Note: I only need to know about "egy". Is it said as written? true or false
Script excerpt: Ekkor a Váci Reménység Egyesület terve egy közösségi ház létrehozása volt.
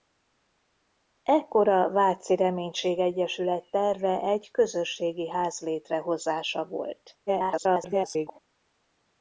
true